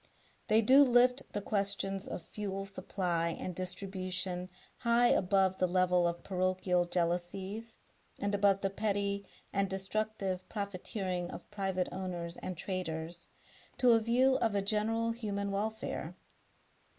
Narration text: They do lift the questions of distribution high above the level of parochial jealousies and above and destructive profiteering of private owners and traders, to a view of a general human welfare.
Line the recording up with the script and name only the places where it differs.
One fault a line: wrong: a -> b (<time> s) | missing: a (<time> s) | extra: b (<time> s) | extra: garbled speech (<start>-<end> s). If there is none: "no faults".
extra: fuel supply and (2.2 s)
extra: the petty (8.6 s)